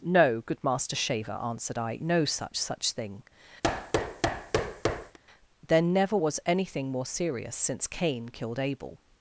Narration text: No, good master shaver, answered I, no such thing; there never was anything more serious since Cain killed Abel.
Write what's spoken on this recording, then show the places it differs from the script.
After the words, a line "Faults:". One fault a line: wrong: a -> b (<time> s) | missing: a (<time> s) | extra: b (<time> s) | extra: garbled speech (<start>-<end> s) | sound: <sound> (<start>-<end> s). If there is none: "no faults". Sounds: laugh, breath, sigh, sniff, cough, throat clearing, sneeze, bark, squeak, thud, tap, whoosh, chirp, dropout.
No, good master shaver, answered I, no such such thing; there never was anything more serious since Cain killed Abel.
Faults:
extra: such (2.6 s)
sound: thud (3.6-5.2 s)